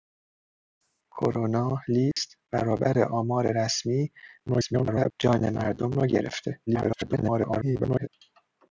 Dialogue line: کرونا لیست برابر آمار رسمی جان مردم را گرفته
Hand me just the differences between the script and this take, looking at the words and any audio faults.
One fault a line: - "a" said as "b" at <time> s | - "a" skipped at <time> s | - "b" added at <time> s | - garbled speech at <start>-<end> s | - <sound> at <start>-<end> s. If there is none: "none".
- dropout at 2.1-2.2 s
- garbled speech at 4.5-5.1 s
- garbled speech at 6.7-8.1 s